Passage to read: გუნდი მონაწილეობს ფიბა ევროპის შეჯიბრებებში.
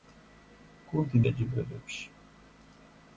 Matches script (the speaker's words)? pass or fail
fail